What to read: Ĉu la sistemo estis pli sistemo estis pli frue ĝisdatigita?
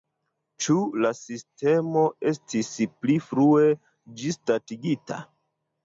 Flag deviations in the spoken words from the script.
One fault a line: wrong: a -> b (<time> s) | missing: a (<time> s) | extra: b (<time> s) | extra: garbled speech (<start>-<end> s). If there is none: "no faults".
missing: sistemo estis pli (3.2 s)